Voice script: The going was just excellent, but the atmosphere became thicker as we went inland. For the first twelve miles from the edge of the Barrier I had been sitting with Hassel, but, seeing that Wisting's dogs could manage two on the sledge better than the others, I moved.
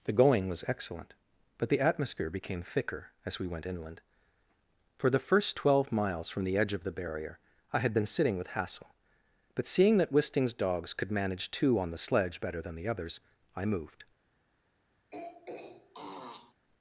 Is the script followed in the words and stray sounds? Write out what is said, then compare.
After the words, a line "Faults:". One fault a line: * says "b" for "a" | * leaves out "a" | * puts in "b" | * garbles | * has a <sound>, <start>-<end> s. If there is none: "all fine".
The going was excellent, but the atmosphere became thicker as we went inland. For the first twelve miles from the edge of the Barrier I had been sitting with Hassel, but, seeing that Wisting's dogs could manage two on the sledge better than the others, I moved.
Faults:
* leaves out "just"
* has a throat clearing, 15.1-16.5 s